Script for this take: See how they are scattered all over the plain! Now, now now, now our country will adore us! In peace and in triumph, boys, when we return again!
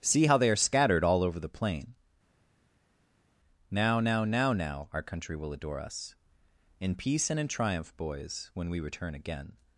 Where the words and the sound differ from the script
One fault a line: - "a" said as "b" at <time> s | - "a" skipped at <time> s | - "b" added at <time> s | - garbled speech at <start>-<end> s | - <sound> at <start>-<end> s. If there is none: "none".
none